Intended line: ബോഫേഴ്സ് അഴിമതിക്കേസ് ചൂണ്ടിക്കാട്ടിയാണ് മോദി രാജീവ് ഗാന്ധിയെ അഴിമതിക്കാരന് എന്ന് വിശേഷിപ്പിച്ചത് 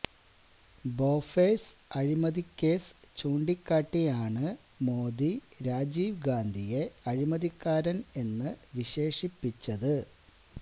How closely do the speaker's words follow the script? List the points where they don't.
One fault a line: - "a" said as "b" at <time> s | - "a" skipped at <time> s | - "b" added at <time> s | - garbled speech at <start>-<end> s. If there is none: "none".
none